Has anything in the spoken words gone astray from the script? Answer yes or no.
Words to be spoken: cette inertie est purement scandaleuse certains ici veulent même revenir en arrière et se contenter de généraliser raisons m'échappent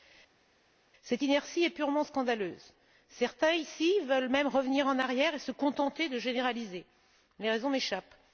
yes